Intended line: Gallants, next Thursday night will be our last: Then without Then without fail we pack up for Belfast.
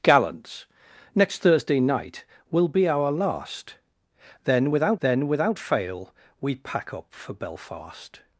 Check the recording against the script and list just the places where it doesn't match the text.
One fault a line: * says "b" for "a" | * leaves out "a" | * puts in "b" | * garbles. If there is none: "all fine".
all fine